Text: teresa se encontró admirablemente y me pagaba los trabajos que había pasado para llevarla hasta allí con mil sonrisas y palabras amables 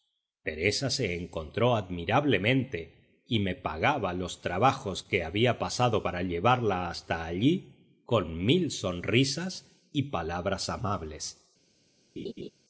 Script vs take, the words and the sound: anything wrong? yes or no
yes